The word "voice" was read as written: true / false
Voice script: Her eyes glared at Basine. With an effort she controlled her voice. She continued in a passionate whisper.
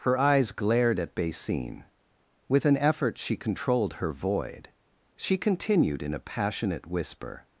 false